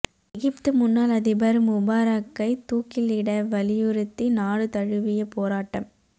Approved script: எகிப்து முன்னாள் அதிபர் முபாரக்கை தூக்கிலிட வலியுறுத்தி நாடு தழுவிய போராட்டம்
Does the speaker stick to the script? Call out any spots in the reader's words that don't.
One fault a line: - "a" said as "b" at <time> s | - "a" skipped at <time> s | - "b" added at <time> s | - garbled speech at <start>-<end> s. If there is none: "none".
none